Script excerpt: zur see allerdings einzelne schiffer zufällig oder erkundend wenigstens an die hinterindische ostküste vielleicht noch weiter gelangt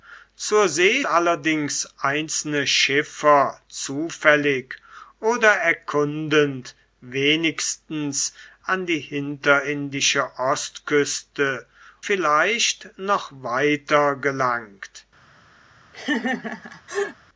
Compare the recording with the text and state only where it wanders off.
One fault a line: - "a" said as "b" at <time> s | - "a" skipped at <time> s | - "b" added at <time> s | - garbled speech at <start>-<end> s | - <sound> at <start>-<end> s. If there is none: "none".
- laugh at 15.9-17.2 s